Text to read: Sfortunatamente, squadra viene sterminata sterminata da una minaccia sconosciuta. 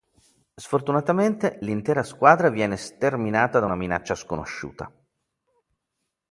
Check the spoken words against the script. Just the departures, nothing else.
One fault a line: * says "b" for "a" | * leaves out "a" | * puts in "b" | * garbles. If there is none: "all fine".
* puts in "l'intera"
* leaves out "sterminata"